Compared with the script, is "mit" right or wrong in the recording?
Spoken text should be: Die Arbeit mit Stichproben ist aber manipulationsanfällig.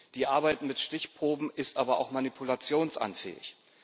right